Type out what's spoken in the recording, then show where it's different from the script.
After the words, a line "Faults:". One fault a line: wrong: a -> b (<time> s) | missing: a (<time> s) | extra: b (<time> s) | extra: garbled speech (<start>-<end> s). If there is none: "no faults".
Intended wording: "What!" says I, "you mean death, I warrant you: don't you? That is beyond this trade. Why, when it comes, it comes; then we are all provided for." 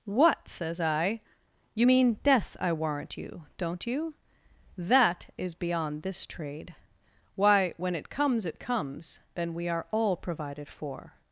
"What!" says I, "you mean death, I warrant you: don't you? That is beyond this trade. Why, when it comes, it comes; then we are all provided for."
Faults:
no faults